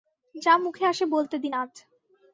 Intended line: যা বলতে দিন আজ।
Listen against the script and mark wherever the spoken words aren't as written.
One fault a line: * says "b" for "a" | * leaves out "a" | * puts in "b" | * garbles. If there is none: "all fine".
* puts in "মুখে আসে"